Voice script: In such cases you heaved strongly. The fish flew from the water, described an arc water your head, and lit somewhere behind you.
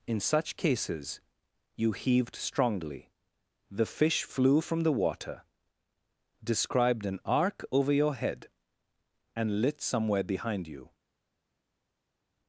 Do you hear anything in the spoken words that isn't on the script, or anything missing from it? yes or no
yes